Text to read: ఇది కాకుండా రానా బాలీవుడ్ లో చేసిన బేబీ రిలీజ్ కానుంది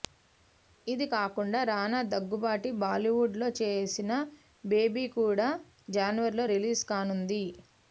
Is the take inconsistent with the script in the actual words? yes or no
yes